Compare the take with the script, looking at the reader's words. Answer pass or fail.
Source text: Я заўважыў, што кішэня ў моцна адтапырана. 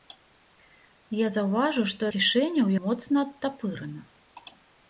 pass